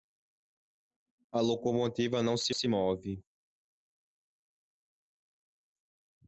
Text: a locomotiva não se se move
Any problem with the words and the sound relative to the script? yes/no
no